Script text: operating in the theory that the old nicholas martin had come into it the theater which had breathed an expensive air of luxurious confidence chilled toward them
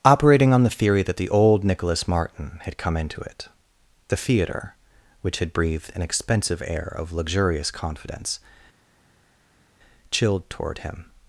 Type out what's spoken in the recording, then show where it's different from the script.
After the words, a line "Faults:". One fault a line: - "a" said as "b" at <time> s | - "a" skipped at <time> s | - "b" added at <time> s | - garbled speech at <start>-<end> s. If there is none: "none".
operating on the theory that the old nicholas martin had come into it the theater which had breathed an expensive air of luxurious confidence chilled toward him
Faults:
- "in" said as "on" at 0.5 s
- "them" said as "him" at 10.8 s